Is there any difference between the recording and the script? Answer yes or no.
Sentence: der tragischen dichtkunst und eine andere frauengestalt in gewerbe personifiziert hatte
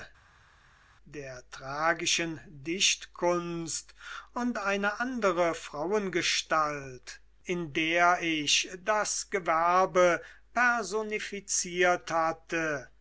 yes